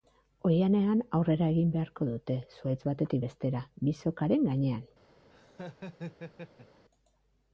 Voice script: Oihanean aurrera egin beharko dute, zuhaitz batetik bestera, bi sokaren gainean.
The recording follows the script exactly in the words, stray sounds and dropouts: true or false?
false